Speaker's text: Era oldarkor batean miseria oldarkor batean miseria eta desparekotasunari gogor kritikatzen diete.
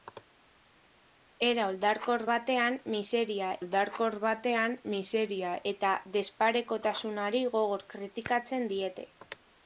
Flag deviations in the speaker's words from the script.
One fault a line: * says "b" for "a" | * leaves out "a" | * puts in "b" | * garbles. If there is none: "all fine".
all fine